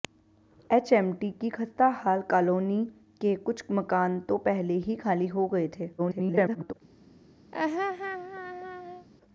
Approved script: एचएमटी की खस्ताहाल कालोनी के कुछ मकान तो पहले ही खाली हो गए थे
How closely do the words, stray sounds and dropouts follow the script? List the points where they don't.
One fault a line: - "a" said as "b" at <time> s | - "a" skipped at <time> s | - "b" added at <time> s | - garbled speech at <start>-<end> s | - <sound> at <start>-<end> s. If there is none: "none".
- garbled speech at 6.0-6.7 s
- laugh at 7.5-9.1 s